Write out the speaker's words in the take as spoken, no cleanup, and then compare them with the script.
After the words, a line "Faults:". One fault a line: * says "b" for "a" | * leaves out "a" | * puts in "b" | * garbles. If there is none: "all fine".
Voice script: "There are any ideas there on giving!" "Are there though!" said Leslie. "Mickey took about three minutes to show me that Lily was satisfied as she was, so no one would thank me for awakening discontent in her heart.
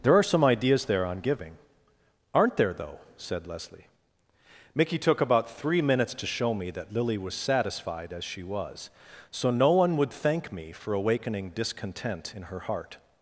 "There are some ideas there on giving!" "Aren't there though!" said Leslie. "Mickey took about three minutes to show me that Lily was satisfied as she was, so no one would thank me for awakening discontent in her heart.
Faults:
* says "some" for "any"
* says "Aren't" for "Are"